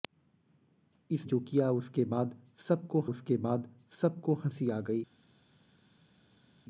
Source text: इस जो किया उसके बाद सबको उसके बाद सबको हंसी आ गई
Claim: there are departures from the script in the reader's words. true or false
false